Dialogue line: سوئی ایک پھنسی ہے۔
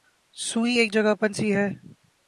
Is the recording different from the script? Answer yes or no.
yes